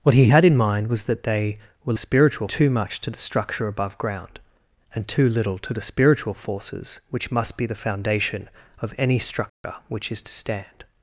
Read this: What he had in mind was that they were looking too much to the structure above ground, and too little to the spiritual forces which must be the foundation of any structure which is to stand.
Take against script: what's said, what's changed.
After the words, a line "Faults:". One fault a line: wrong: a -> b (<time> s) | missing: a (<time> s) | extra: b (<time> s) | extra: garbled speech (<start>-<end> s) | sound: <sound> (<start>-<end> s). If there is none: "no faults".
What he had in mind was that they were spiritual too much to the structure above ground, and too little to the spiritual forces which must be the foundation of any structure which is to stand.
Faults:
wrong: looking -> spiritual (1.9 s)
sound: dropout (9.5-9.6 s)